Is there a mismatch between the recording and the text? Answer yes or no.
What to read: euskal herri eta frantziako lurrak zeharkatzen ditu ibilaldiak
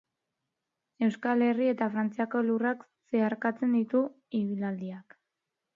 no